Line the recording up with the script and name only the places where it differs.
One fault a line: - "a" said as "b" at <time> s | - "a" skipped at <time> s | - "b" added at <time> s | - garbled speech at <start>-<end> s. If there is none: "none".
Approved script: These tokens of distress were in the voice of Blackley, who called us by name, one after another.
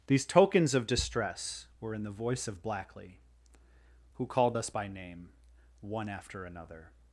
none